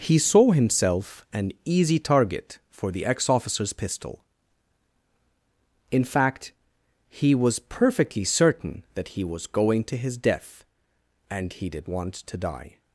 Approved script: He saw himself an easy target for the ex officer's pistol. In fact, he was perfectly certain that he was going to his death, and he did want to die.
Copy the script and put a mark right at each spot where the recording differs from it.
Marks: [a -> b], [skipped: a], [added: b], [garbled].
He saw himself an easy target for the ex officer's pistol. In fact, he was perfectly certain that he was going to his death, and he did want to die.